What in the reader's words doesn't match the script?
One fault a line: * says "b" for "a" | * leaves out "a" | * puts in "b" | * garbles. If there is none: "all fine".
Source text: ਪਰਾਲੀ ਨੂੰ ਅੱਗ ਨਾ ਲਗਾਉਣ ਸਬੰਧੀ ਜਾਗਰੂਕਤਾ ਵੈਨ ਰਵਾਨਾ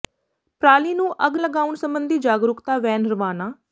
* leaves out "ਨਾ"